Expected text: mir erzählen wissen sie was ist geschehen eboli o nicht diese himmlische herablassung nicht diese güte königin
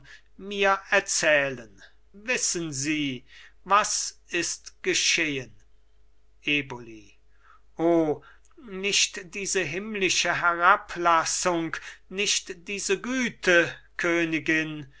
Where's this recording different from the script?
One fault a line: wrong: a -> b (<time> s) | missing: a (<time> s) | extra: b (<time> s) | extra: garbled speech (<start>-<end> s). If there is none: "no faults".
no faults